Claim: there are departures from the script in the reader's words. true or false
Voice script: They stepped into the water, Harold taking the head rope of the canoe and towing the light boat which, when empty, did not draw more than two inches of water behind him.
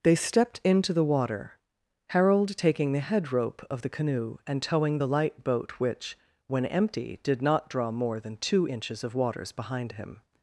true